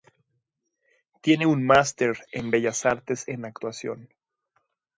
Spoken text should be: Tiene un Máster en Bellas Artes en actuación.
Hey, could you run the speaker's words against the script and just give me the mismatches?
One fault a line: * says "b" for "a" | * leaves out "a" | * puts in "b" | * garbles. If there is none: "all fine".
all fine